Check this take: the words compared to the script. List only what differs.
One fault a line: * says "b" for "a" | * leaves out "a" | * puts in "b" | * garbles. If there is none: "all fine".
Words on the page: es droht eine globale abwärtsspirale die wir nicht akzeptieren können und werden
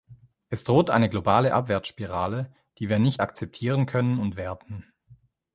all fine